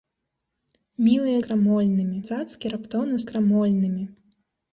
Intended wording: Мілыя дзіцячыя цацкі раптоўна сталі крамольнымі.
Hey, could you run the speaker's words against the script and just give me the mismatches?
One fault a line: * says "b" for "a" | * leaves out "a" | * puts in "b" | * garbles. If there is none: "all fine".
* says "крамольнымі" for "дзіцячыя"
* leaves out "сталі"